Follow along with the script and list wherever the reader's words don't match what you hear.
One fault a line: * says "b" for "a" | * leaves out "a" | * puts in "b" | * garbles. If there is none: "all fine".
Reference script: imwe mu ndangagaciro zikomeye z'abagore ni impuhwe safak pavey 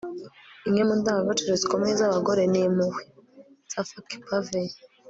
all fine